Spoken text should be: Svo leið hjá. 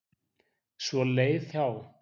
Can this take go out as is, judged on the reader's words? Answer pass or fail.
pass